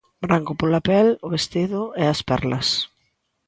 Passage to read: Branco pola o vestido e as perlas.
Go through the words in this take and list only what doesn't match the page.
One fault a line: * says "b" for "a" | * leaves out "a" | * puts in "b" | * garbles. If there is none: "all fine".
* puts in "pel"